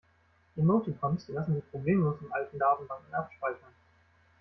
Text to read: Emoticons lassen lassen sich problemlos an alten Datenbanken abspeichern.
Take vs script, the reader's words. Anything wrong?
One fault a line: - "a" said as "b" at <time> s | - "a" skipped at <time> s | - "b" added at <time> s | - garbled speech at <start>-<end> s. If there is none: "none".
- "lassen" skipped at 1.6 s
- "an" said as "in" at 2.2 s